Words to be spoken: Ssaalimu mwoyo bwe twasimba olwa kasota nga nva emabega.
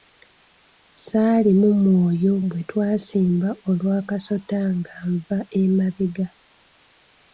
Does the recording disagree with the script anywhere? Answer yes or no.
no